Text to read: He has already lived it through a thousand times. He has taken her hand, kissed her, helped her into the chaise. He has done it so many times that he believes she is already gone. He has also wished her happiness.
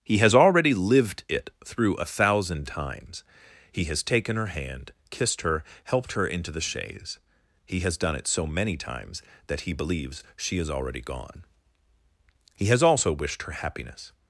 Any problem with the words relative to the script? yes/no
no